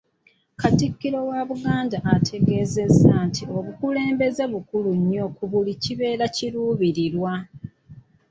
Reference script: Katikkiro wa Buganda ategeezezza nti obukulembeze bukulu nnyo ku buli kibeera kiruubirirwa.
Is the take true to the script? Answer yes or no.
yes